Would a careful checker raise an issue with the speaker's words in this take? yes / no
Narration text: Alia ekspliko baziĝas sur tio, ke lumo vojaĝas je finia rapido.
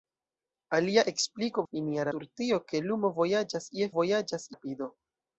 yes